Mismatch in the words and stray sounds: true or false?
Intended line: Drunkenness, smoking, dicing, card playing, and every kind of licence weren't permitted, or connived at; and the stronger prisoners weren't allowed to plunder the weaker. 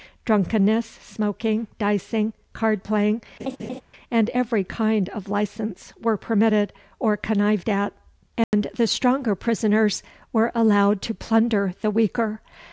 true